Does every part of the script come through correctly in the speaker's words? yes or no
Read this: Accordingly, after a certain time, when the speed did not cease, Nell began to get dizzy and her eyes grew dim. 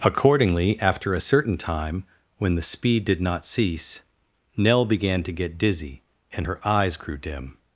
yes